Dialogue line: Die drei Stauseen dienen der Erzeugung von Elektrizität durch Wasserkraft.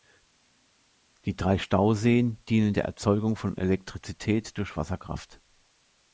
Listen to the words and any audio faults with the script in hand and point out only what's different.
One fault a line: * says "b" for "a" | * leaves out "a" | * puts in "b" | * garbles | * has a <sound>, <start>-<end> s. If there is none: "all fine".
all fine